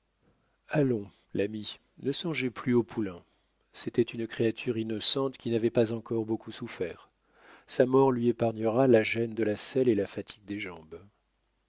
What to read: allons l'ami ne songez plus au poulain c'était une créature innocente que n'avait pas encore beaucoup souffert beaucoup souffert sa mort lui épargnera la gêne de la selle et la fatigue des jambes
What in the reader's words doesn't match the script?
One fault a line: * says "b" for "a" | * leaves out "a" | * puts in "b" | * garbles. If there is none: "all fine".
* says "qui" for "que"
* leaves out "beaucoup souffert"